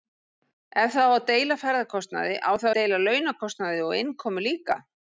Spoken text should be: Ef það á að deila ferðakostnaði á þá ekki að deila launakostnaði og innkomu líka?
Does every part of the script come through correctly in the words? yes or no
no